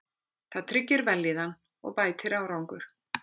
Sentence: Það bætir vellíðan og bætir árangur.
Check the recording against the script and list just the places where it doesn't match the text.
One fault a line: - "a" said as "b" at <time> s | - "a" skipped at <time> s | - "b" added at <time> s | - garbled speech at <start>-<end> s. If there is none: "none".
- "bætir" said as "tryggir" at 0.7 s